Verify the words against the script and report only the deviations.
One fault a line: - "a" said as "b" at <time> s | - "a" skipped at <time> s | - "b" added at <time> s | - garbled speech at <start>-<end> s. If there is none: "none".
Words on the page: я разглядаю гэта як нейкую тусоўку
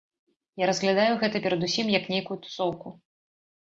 - "перадусім" added at 1.4 s